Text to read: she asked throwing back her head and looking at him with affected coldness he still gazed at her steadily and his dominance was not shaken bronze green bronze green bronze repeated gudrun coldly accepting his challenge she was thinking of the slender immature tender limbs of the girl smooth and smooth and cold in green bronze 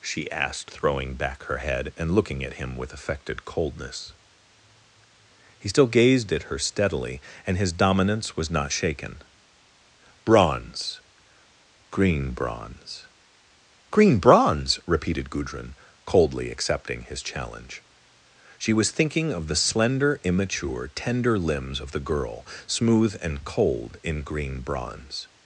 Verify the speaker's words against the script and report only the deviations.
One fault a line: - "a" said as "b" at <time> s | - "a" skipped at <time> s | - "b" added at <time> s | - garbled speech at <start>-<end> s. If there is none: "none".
- "smooth and" skipped at 23.4 s